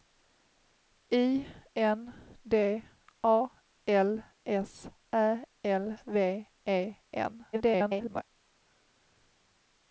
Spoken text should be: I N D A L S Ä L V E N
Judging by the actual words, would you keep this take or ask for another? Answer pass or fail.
fail